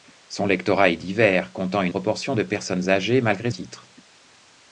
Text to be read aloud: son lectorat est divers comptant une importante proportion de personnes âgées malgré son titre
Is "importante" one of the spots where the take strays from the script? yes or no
yes